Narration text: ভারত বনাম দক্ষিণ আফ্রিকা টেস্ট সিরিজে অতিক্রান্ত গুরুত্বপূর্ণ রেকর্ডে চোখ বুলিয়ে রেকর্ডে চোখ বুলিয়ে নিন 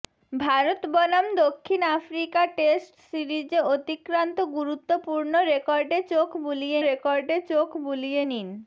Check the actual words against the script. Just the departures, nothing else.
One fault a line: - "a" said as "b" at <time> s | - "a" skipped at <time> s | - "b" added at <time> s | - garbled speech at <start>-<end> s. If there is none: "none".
none